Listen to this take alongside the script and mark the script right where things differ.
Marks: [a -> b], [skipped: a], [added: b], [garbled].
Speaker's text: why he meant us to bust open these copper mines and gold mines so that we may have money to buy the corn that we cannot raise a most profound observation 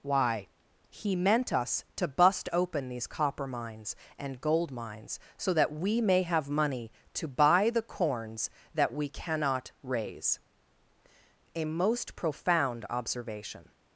why he meant us to bust open these copper mines and gold mines so that we may have money to buy the [corn -> corns] that we cannot raise a most profound observation